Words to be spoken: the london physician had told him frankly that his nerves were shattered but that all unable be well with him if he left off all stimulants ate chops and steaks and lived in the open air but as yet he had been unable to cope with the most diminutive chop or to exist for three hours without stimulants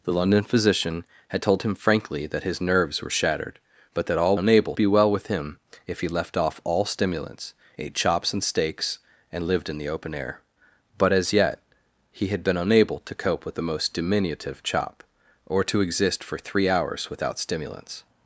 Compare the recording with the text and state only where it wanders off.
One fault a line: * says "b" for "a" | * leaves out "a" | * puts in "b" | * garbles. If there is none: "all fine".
all fine